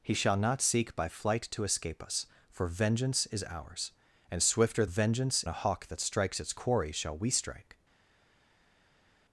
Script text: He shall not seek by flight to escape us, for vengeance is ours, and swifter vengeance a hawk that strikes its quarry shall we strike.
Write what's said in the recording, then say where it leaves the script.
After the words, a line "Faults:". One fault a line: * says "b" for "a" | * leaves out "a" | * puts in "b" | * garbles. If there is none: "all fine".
He shall not seek by flight to escape us, for vengeance is ours, and swifter vengeance a hawk that strikes its quarry shall we strike.
Faults:
all fine